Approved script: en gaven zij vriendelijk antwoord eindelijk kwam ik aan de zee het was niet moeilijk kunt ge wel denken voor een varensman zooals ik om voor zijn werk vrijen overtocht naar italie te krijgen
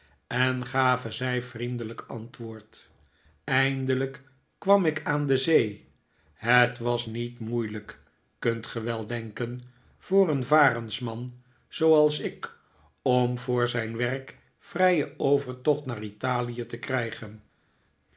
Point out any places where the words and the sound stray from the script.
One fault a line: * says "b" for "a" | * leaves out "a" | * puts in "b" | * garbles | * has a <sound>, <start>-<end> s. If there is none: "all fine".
all fine